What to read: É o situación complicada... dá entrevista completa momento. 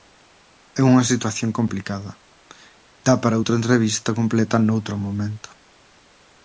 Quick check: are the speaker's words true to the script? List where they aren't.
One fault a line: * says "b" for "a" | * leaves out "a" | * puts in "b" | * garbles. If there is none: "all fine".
* says "unha" for "o"
* puts in "para outra"
* puts in "noutro"